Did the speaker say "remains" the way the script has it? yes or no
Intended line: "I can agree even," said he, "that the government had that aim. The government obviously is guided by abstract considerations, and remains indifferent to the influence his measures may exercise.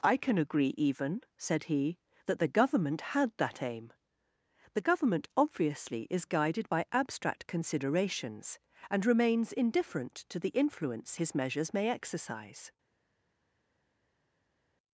yes